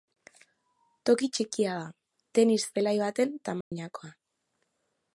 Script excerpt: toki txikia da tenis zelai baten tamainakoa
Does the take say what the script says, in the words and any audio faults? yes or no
no